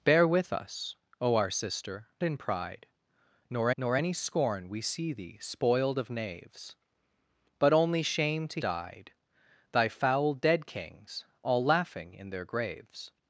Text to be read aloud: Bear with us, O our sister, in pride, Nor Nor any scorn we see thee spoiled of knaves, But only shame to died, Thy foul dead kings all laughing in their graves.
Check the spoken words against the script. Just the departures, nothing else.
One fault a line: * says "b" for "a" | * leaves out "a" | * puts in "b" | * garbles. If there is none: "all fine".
all fine